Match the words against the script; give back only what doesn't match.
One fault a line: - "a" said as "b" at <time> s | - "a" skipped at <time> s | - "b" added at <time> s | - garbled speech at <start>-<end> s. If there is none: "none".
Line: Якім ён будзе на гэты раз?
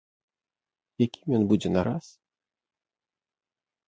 - "гэты" skipped at 1.8 s